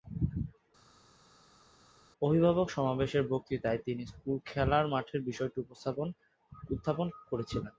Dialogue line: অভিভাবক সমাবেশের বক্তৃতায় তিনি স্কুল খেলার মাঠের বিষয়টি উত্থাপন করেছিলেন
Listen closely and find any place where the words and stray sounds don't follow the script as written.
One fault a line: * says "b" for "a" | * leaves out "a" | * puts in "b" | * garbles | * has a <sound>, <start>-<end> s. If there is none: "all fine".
all fine